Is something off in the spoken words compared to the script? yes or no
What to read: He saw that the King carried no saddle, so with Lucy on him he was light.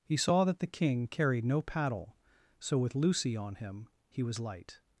yes